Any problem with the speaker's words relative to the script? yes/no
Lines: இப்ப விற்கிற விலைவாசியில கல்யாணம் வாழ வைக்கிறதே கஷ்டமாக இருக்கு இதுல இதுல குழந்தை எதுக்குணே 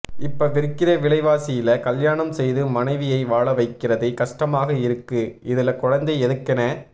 yes